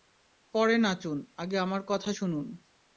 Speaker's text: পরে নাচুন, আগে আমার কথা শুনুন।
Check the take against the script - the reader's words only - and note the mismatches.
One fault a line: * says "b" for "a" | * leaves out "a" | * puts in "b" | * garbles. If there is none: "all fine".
all fine